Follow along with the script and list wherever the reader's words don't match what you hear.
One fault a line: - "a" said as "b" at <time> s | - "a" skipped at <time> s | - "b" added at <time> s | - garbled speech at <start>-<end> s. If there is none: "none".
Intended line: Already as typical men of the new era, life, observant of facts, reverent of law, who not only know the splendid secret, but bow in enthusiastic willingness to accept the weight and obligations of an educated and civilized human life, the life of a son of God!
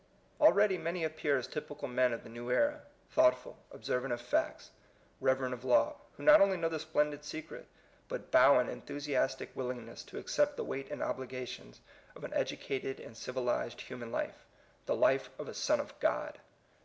- "many appear" added at 0.8 s
- "life" said as "thoughtful" at 3.1 s